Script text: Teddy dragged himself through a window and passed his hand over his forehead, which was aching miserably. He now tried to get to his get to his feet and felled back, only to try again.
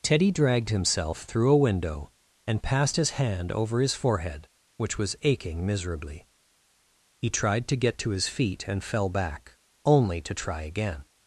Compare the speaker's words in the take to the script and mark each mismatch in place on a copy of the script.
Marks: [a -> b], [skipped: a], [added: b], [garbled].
Teddy dragged himself through a window and passed his hand over his forehead, which was aching miserably. He [skipped: now] tried to get to his [skipped: get to his] feet and [felled -> fell] back, only to try again.